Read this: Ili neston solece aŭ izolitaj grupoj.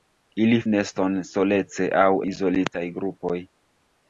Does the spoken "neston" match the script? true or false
true